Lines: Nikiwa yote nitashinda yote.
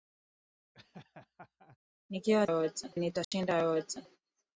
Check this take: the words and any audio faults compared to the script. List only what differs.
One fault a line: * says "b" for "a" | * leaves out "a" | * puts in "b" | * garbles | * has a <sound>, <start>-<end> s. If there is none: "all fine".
* has a laugh, 0.7-1.8 s
* has a dropout, 3.2-3.3 s